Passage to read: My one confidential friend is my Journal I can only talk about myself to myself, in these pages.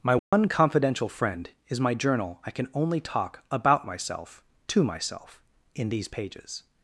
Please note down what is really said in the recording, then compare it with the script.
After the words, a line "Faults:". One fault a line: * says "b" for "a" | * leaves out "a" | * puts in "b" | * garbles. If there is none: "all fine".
My one confidential friend is my Journal I can only talk about myself to myself, in these pages.
Faults:
all fine